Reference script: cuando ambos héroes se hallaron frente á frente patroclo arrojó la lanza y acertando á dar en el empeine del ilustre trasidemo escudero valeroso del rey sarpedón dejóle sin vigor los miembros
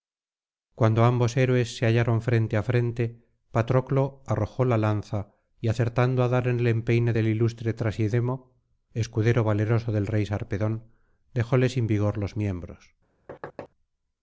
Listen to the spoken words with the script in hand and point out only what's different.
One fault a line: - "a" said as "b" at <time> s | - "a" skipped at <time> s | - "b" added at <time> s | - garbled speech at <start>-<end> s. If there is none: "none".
none